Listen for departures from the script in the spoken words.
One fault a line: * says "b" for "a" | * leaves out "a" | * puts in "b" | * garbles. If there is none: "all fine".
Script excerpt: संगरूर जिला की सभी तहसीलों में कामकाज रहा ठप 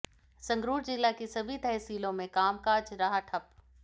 all fine